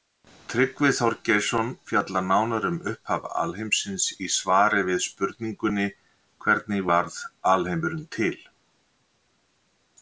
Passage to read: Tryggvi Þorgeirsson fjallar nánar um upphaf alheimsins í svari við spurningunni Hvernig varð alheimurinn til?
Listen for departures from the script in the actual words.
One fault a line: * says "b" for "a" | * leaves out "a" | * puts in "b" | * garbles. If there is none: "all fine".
all fine